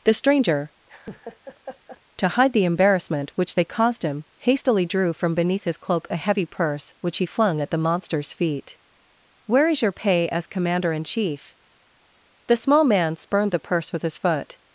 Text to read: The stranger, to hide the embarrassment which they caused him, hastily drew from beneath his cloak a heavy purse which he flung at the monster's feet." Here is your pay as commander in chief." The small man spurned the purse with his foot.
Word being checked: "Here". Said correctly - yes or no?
no